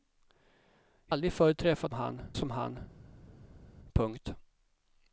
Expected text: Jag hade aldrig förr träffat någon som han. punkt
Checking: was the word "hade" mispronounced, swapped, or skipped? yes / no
yes